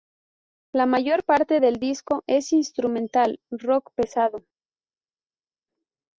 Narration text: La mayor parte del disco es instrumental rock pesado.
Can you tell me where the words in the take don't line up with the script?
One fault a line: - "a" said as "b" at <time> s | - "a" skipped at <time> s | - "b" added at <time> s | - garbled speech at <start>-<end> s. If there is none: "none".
none